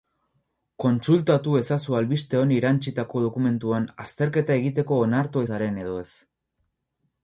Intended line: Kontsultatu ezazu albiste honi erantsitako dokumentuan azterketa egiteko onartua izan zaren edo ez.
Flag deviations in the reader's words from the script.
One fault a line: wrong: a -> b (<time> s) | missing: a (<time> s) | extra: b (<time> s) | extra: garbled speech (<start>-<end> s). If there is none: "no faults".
missing: izan (5.5 s)